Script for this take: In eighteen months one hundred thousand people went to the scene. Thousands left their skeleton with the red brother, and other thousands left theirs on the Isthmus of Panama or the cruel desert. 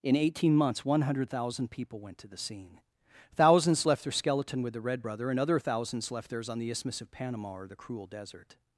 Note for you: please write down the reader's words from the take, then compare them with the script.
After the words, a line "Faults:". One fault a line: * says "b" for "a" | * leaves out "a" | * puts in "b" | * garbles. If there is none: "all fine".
In eighteen months one hundred thousand people went to the scene. Thousands left their skeleton with the red brother, and other thousands left theirs on the Isthmus of Panama or the cruel desert.
Faults:
all fine